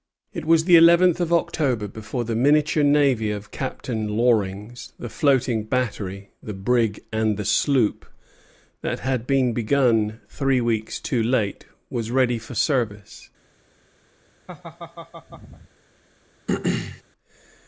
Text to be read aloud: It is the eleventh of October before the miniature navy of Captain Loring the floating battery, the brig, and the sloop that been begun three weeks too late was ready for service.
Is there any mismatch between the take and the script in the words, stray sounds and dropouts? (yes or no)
yes